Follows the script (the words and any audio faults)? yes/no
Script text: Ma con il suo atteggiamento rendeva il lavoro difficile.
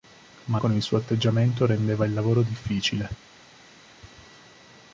yes